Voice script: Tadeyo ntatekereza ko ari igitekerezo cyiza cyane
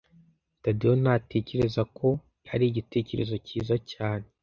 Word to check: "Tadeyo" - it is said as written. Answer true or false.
true